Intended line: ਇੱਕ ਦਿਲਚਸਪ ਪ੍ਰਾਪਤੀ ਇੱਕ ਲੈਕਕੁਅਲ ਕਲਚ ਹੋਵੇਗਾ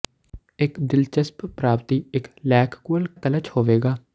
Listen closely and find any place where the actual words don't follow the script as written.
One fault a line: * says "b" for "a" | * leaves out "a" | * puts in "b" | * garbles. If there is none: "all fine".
all fine